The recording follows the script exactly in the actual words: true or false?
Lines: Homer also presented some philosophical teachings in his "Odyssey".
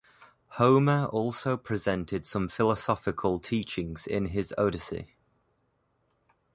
true